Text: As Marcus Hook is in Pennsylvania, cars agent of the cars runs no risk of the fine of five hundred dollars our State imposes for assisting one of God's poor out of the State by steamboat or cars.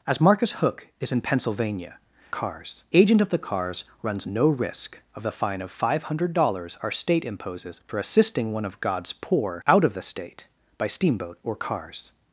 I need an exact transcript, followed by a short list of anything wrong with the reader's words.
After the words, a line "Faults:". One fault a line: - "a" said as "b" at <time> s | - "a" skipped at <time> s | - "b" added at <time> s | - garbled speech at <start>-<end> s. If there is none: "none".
As Marcus Hook is in Pennsylvania, cars agent of the cars runs no risk of the fine of five hundred dollars our State imposes for assisting one of God's poor out of the State by steamboat or cars.
Faults:
none